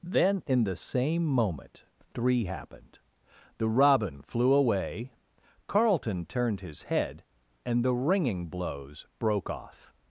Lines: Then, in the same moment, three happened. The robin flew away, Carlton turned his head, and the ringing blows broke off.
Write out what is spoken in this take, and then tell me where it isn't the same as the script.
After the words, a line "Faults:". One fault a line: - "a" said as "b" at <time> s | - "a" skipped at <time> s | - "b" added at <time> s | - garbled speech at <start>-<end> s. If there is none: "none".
Then, in the same moment, three happened. The robin flew away, Carlton turned his head, and the ringing blows broke off.
Faults:
none